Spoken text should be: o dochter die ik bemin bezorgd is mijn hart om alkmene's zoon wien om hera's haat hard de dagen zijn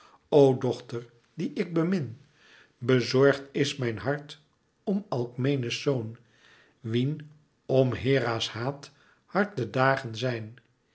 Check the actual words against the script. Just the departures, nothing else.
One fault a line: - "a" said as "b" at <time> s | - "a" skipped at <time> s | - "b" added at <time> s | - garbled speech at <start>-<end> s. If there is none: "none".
none